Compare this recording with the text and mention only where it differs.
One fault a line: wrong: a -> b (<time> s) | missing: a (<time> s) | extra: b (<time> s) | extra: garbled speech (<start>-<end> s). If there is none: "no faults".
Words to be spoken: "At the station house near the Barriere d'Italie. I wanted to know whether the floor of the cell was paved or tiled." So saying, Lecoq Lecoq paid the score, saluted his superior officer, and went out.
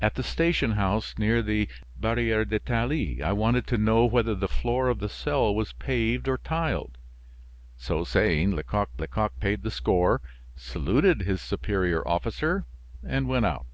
no faults